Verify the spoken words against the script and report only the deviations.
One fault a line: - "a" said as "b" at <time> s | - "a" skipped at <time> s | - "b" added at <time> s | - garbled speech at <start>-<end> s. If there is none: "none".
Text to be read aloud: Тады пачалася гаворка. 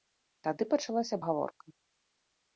none